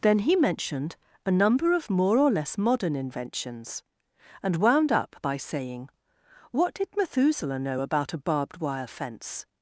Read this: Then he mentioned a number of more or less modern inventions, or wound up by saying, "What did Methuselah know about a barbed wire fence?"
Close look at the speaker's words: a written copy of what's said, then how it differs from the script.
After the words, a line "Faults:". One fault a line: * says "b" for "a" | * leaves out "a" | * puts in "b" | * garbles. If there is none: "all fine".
Then he mentioned a number of more or less modern inventions, and wound up by saying, "What did Methuselah know about a barbed wire fence?"
Faults:
* says "and" for "or"